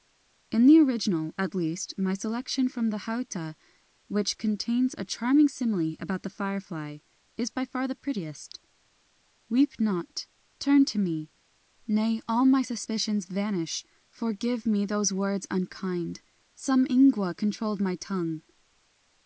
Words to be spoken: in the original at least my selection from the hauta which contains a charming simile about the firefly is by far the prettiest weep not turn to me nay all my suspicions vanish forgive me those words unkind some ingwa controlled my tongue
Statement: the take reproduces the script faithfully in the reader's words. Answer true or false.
true